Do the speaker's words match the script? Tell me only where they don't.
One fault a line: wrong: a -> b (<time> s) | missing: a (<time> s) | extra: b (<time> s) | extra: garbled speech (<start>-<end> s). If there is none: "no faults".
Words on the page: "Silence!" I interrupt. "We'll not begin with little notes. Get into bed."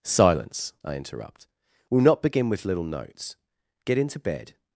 no faults